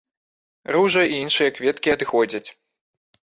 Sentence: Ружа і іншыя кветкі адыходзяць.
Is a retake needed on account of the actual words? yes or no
no